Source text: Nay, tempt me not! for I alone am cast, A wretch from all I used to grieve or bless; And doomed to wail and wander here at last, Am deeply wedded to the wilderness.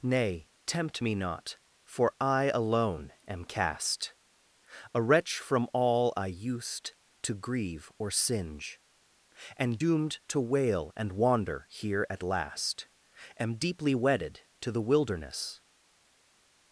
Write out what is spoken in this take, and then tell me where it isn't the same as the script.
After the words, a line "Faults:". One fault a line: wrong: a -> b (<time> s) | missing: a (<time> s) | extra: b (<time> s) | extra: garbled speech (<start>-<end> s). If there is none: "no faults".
Nay, tempt me not! for I alone am cast, A wretch from all I used to grieve or singe; And doomed to wail and wander here at last, Am deeply wedded to the wilderness.
Faults:
wrong: bless -> singe (8.1 s)